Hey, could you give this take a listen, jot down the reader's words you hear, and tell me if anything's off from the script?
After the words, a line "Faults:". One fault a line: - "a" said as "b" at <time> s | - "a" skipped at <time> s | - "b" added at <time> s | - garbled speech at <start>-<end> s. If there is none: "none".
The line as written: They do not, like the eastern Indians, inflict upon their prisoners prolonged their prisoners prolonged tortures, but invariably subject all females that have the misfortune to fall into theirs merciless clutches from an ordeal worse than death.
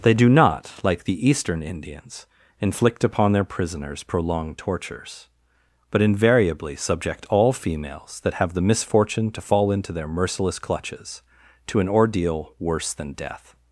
They do not, like the eastern Indians, inflict upon their prisoners prolonged tortures, but invariably subject all females that have the misfortune to fall into their merciless clutches to an ordeal worse than death.
Faults:
- "their prisoners prolonged" skipped at 4.6 s
- "theirs" said as "their" at 9.9 s
- "from" said as "to" at 11.7 s